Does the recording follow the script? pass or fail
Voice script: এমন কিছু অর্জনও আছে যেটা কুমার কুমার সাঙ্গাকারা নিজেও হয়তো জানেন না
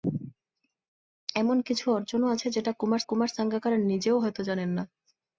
pass